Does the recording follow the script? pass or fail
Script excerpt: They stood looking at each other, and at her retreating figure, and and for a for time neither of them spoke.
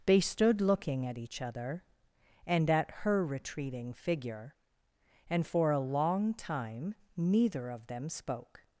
fail